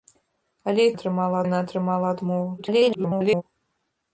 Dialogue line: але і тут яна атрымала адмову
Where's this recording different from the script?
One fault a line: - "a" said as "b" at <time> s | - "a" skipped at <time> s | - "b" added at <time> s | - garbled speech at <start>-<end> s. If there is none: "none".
- "тут" said as "атрымала" at 0.9 s
- garbled speech at 2.6-3.4 s